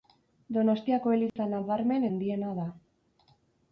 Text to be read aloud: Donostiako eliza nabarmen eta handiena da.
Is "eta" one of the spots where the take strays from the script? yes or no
yes